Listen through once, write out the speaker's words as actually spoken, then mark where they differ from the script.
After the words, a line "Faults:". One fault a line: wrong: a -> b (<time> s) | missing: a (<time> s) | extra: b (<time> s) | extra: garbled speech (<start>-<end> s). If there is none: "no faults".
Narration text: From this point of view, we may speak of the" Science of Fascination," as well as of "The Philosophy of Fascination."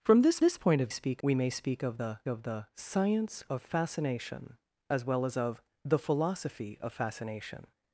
From this this point of speak, we may speak of the of the" Science of Fascination," as well as of "The Philosophy of Fascination."
Faults:
extra: this (0.4 s)
wrong: view -> speak (0.9 s)
extra: of the (2.3 s)